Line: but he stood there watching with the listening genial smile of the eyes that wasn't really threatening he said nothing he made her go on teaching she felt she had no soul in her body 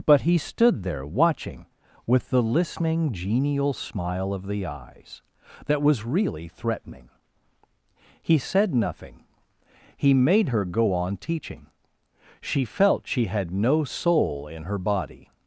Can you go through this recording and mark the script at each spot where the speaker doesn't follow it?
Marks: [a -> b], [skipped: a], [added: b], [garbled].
but he stood there watching with the listening genial smile of the eyes that [wasn't -> was] really threatening he said nothing he made her go on teaching she felt she had no soul in her body